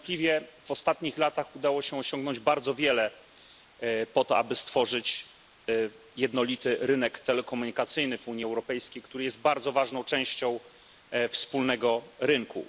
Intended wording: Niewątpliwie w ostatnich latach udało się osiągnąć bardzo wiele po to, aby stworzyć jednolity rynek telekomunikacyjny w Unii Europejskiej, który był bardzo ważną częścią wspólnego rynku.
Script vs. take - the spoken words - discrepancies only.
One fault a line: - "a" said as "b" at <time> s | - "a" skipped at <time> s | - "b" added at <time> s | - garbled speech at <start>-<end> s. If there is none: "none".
- "był" said as "jest" at 9.2 s